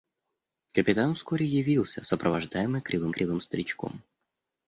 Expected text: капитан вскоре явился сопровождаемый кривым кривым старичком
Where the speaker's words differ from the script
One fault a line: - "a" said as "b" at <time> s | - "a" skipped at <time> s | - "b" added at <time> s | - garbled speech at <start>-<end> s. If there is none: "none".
none